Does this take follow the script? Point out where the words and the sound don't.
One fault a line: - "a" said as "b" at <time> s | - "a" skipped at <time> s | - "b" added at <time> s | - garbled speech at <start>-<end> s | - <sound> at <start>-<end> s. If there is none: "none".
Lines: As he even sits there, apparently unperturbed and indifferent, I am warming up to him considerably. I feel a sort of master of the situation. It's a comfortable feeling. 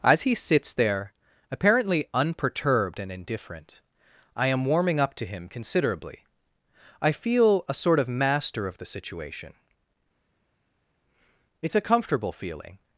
- "even" skipped at 0.3 s